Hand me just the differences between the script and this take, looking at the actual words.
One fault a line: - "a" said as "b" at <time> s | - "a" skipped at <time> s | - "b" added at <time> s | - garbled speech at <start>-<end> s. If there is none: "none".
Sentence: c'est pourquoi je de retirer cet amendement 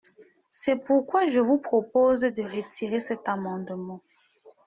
- "vous propose" added at 1.4 s